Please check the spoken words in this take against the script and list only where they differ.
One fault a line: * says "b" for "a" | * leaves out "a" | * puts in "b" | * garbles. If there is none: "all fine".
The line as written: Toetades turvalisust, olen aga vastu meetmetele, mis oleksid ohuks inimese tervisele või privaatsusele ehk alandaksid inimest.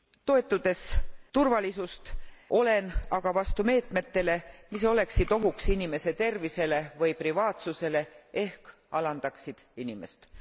all fine